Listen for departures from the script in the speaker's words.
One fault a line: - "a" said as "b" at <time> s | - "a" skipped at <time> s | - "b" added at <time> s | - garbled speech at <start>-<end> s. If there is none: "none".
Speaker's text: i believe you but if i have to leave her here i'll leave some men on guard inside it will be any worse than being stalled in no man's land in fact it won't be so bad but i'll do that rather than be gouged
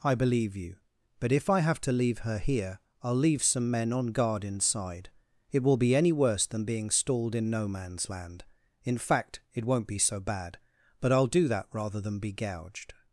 none